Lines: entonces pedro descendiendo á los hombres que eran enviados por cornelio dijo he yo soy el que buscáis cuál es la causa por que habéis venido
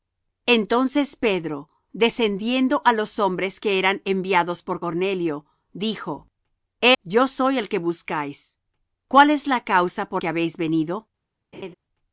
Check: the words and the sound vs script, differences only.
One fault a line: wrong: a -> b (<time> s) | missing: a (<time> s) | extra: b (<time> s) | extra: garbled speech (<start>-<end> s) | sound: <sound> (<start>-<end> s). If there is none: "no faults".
sound: laugh (11.5-11.7 s)